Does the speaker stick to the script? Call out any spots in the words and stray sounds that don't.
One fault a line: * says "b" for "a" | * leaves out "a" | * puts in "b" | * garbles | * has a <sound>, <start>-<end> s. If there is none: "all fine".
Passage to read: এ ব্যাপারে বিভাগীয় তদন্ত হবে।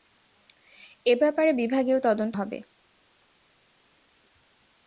all fine